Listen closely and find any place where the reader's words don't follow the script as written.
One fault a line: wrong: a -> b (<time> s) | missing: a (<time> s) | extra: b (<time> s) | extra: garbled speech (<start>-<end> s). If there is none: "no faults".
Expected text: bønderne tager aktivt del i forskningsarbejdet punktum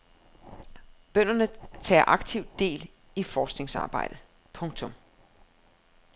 no faults